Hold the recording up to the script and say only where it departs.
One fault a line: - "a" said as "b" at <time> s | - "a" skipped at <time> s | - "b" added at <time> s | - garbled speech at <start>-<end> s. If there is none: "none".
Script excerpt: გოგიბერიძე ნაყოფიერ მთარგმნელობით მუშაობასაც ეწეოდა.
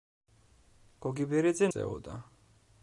- "ნაყოფიერ მთარგმნელობით მუშაობასაც" skipped at 1.7 s